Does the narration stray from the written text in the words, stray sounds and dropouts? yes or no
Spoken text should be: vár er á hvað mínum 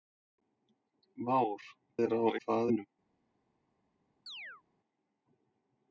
yes